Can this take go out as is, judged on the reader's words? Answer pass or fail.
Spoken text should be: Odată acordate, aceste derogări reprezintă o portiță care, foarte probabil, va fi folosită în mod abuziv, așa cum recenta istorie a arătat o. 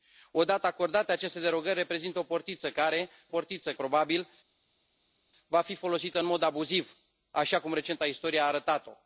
fail